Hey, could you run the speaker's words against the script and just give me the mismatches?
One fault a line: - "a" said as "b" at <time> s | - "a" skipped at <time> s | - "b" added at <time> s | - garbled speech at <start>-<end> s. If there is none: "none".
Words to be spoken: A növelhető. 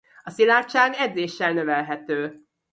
- "szilárdság edzéssel" added at 0.3 s